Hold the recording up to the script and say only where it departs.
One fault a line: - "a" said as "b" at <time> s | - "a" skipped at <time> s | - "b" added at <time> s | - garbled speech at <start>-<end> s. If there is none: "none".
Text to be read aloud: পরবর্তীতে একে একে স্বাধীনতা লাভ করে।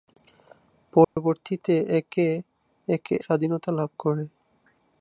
none